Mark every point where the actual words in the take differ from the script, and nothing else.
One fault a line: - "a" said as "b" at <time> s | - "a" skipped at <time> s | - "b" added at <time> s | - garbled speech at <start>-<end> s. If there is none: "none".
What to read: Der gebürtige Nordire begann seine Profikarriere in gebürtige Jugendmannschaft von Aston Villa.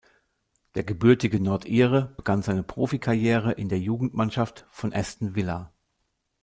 - "gebürtige" said as "der" at 3.7 s